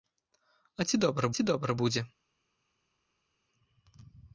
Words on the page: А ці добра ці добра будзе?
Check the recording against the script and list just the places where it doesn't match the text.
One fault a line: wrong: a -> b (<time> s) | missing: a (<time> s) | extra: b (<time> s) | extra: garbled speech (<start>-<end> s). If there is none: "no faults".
no faults